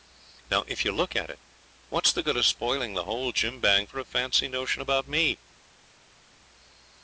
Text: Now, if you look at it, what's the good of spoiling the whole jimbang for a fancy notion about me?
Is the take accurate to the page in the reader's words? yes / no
yes